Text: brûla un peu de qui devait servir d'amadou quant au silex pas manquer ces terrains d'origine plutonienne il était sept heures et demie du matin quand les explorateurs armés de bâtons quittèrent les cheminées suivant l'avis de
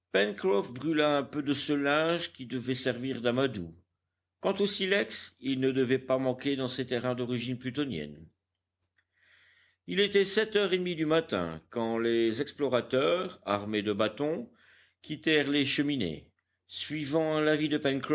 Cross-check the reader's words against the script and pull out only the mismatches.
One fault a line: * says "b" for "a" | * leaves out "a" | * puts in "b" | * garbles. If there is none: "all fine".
* puts in "ce linge"
* puts in "il ne devait"
* puts in "dans"